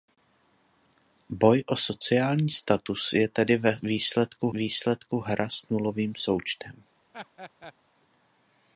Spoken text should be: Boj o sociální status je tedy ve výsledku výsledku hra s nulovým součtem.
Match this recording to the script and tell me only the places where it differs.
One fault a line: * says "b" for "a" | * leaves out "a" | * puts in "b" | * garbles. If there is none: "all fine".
all fine